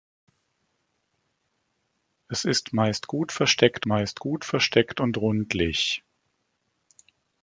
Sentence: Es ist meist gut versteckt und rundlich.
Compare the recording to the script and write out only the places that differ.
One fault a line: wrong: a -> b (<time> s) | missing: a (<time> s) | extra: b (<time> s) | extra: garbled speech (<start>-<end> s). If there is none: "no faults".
extra: meist gut versteckt (3.9 s)